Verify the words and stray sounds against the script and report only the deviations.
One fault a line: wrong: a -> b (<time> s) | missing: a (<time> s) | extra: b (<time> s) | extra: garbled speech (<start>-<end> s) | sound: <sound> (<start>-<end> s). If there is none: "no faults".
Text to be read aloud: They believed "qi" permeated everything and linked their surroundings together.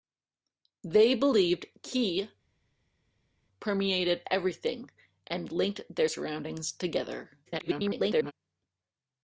extra: garbled speech (7.5-8.3 s)